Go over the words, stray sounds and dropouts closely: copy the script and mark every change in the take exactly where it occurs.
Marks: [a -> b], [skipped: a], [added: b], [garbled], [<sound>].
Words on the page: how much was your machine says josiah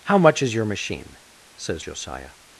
how much [was -> is] your machine says josiah